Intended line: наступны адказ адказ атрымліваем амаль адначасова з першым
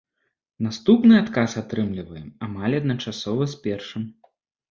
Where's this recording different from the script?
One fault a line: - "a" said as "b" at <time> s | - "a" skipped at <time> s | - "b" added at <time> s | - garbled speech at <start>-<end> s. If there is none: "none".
- "адказ" skipped at 1.5 s